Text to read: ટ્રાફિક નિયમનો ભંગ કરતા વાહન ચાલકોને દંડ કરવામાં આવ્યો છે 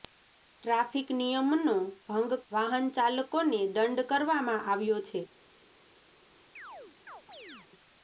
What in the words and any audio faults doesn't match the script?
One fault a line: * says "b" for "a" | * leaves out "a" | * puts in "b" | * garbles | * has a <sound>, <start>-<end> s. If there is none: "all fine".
* leaves out "કરતા"
* has a chirp, 6.6-7.7 s